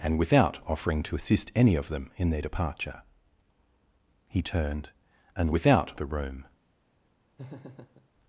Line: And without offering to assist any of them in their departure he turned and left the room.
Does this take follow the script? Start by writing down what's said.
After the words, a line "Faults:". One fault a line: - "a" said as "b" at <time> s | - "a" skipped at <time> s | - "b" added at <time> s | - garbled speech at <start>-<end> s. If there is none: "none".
And without offering to assist any of them in their departure he turned and without the room.
Faults:
- "left" said as "without" at 5.5 s